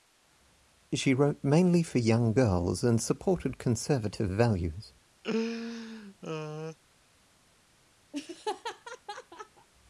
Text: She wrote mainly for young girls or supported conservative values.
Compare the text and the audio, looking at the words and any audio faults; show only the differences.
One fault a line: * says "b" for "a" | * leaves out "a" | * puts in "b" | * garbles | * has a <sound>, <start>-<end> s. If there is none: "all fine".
* says "and" for "or"
* has a laugh, 5.2-6.8 s
* has a laugh, 8.1-9.7 s